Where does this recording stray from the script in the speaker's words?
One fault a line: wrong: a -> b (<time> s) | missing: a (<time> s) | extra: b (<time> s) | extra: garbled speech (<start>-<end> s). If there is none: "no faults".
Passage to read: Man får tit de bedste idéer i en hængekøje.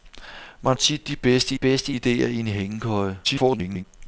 missing: får (0.8 s)
extra: bedste (1.5 s)
extra: garbled speech (3.2-3.8 s)